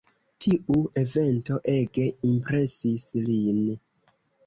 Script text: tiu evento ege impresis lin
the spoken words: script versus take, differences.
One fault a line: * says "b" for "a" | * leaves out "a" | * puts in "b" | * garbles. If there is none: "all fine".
all fine